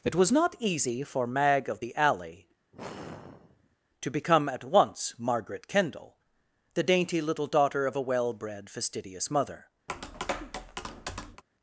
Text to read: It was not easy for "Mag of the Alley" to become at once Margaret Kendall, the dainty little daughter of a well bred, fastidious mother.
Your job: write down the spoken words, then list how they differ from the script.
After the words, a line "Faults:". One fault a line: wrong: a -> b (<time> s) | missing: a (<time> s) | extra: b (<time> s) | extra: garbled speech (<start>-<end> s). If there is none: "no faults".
It was not easy for "Mag of the Alley" to become at once Margaret Kendall, the dainty little daughter of a well bred, fastidious mother.
Faults:
no faults